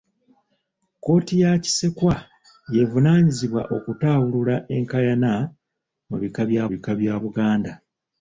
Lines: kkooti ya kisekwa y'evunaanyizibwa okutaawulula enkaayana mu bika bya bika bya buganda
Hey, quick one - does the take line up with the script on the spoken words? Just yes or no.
yes